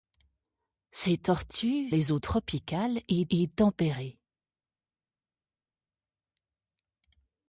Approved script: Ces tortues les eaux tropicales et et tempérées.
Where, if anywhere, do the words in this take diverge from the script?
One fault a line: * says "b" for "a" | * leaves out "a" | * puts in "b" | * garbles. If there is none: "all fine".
all fine